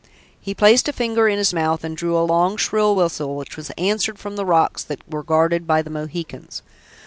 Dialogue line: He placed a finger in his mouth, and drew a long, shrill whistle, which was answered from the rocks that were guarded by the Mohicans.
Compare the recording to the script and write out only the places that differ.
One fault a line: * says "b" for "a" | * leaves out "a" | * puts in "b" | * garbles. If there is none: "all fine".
all fine